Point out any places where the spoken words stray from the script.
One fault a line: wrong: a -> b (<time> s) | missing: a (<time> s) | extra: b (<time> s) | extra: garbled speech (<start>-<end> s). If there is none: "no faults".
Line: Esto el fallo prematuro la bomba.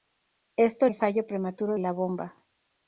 no faults